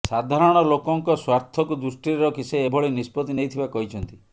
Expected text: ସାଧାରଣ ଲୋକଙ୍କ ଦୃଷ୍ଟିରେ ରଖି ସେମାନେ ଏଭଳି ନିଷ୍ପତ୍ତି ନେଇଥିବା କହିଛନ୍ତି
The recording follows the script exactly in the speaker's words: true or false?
false